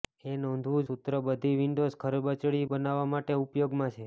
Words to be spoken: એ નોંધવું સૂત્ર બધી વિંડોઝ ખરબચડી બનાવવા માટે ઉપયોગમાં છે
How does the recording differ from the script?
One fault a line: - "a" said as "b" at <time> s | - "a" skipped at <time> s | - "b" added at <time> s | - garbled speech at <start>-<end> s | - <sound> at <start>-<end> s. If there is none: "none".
none